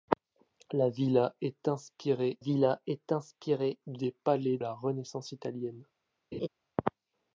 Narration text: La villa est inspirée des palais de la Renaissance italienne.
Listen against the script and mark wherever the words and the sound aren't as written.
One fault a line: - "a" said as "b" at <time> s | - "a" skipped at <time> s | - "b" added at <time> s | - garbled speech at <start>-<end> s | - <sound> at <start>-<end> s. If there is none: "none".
- "villa est inspirée" added at 2.4 s
- "de" skipped at 4.6 s
- laugh at 6.3-6.5 s